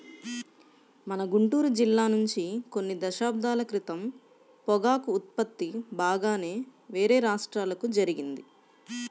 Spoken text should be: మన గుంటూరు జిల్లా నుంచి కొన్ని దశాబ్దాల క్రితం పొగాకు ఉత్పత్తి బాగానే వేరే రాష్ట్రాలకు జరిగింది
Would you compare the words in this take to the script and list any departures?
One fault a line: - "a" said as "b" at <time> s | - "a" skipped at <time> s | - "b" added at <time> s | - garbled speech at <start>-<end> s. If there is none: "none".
none